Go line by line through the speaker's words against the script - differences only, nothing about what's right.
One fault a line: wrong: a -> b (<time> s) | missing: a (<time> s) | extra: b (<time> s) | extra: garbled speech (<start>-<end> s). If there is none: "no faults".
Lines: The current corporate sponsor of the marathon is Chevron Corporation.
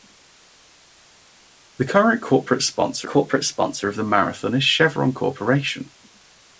extra: corporate sponsor (3.0 s)